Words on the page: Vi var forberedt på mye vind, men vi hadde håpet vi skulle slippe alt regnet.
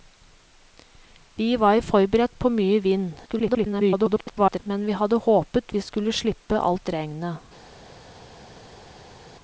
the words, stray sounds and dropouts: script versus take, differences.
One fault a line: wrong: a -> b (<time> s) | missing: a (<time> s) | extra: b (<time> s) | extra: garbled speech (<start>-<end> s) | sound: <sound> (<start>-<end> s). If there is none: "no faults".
extra: garbled speech (3.3-4.6 s)